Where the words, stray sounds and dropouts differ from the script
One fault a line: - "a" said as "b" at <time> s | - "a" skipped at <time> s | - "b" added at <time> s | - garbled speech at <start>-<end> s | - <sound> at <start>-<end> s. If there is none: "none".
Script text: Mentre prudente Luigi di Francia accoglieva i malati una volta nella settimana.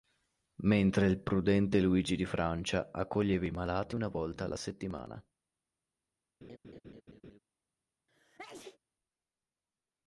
- "il" added at 1.1 s
- "nella" said as "alla" at 4.4 s
- laugh at 6.4-7.4 s
- sneeze at 8.1-8.8 s